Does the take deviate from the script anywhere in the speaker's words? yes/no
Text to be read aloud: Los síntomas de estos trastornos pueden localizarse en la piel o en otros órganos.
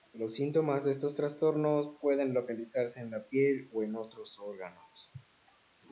no